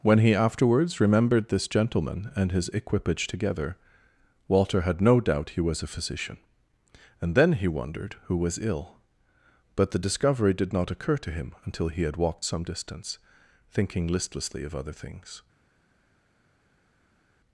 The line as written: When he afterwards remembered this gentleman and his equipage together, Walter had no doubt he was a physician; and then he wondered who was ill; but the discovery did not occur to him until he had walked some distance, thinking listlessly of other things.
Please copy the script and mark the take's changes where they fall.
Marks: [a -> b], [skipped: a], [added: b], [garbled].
When he afterwards remembered this gentleman and his equipage together, Walter had no doubt he was a physician; and then he wondered who was ill; but the discovery did not occur to him until he had walked some distance, thinking listlessly of other things.